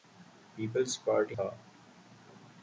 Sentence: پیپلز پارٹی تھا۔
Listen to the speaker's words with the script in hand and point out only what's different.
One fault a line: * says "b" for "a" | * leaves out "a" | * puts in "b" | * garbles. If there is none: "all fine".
all fine